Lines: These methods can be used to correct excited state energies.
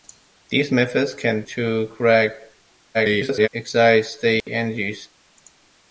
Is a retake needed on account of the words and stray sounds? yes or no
yes